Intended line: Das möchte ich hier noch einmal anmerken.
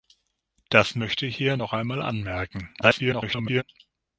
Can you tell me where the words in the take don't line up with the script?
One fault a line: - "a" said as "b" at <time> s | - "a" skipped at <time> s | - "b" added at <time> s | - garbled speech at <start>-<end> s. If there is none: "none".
- garbled speech at 2.8-3.6 s